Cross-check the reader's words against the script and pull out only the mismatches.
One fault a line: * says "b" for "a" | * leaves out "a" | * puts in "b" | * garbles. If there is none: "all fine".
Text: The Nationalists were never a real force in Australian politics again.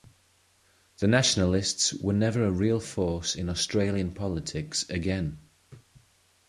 all fine